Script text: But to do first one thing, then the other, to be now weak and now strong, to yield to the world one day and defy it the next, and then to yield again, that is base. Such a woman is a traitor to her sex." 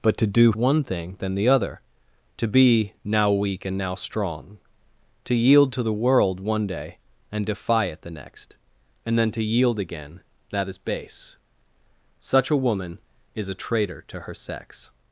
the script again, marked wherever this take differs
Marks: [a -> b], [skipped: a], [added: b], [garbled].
But to do [skipped: first] one thing, then the other, to be now weak and now strong, to yield to the world one day and defy it the next, and then to yield again, that is base. Such a woman is a traitor to her sex."